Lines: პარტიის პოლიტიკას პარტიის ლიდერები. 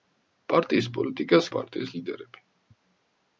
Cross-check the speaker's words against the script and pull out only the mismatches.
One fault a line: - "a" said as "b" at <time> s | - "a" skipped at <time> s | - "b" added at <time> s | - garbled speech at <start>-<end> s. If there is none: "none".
none